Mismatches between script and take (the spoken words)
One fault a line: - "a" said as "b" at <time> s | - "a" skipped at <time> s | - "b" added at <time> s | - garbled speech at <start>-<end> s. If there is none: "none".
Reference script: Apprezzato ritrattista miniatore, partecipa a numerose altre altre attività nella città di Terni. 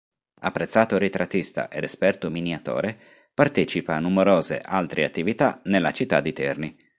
- "ed esperto" added at 1.7 s
- "altre" skipped at 5.0 s